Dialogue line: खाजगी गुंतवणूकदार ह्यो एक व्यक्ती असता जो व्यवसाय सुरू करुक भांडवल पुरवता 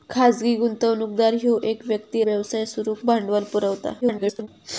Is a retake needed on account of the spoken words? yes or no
yes